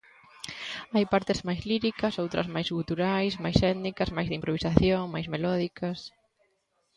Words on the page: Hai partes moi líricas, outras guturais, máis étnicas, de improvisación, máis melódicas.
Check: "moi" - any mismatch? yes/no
yes